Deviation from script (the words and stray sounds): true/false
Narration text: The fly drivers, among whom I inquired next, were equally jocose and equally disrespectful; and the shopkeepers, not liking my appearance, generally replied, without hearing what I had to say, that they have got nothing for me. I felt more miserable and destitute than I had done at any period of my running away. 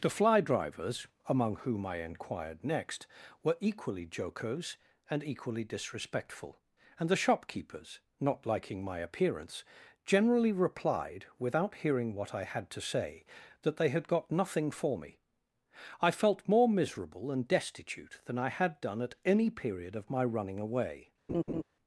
true